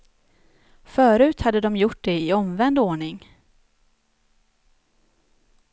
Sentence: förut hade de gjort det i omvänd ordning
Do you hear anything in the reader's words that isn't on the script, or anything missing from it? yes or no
no